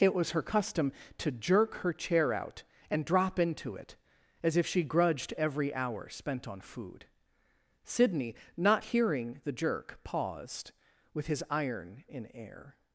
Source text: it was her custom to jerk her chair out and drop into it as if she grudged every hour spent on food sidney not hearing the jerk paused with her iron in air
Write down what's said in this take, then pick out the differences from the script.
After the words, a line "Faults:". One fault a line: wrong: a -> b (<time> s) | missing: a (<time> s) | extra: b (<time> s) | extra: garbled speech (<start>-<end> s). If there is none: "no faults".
it was her custom to jerk her chair out and drop into it as if she grudged every hour spent on food sidney not hearing the jerk paused with his iron in air
Faults:
wrong: her -> his (11.3 s)